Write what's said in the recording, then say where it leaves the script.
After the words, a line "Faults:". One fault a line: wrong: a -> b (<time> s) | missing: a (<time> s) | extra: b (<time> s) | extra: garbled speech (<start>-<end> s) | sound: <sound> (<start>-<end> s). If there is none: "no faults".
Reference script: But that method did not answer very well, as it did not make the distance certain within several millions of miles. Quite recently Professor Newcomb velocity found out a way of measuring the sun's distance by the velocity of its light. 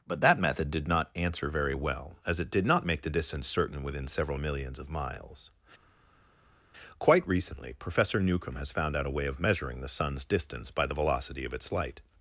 But that method did not answer very well, as it did not make the distance certain within several millions of miles. Quite recently Professor Newcomb has found out a way of measuring the sun's distance by the velocity of its light.
Faults:
wrong: velocity -> has (8.6 s)